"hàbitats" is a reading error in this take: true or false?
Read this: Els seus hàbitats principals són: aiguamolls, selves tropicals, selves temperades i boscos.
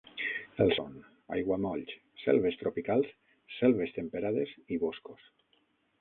true